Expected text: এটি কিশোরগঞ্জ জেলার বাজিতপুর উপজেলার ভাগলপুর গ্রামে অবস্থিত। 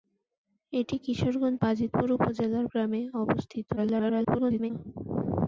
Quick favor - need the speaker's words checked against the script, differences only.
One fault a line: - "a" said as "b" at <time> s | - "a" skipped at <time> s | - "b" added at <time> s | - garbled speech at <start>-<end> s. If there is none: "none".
- "জেলার" skipped at 1.6 s
- "ভাগলপুর" skipped at 2.7 s
- garbled speech at 3.8-4.7 s